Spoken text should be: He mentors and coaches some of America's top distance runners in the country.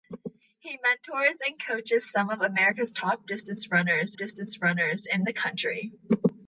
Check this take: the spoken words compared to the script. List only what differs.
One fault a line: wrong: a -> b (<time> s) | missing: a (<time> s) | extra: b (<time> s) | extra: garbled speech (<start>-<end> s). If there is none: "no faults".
extra: distance runners (4.2 s)